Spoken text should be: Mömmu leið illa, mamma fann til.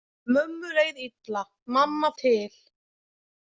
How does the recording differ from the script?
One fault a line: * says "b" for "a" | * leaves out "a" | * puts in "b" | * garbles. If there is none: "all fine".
* leaves out "fann"